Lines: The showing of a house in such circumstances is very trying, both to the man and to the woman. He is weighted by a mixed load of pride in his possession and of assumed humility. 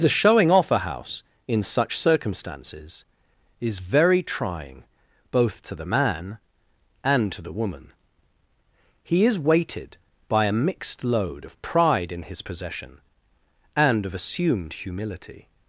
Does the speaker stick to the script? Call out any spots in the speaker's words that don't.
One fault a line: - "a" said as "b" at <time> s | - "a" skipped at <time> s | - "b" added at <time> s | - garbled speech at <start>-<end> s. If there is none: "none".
- "of" said as "off" at 0.5 s